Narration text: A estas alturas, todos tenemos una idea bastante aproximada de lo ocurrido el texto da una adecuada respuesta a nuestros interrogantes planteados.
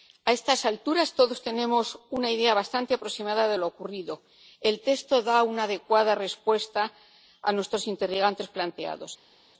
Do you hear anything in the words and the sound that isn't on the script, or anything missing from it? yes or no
no